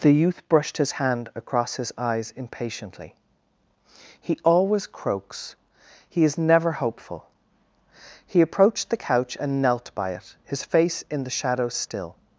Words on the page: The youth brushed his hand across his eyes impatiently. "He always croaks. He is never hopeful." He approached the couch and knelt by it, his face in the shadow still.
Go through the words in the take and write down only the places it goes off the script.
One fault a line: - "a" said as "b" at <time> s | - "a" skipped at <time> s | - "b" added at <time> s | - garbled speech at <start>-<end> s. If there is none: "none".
none